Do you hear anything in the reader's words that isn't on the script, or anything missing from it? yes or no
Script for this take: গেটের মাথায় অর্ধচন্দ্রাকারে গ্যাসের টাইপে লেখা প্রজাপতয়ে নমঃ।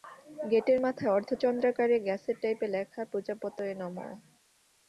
no